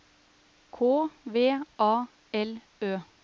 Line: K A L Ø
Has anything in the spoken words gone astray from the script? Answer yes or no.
yes